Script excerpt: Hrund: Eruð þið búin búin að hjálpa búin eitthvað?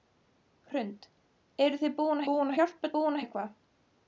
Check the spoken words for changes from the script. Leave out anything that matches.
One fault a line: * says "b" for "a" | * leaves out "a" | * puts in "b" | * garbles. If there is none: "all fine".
all fine